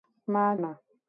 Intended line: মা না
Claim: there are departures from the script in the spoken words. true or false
false